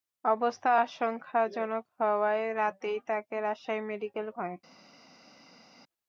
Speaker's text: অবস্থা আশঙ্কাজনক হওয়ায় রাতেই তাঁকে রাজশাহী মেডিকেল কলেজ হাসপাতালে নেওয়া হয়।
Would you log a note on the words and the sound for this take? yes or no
yes